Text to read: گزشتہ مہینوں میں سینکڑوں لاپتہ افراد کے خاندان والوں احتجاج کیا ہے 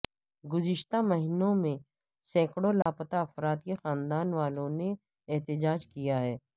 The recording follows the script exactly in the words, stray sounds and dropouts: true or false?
false